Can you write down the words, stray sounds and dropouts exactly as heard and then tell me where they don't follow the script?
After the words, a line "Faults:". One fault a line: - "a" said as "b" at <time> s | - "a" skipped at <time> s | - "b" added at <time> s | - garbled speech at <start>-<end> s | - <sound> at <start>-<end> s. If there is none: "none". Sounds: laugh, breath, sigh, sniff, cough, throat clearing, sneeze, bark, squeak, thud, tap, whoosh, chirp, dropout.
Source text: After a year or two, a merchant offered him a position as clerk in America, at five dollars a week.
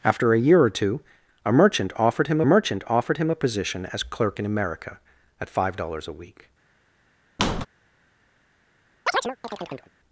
After a year or two, a merchant offered him merchant offered him a position as clerk in America, at five dollars a week.
Faults:
- "merchant offered him" added at 2.4 s
- squeak at 7.4-7.7 s
- chirp at 9.1-9.9 s